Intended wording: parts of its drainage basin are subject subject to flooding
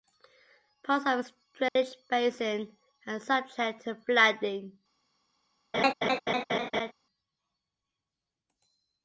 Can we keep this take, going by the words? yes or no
no